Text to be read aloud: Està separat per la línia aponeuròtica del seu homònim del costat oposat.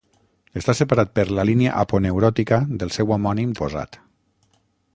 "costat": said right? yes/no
no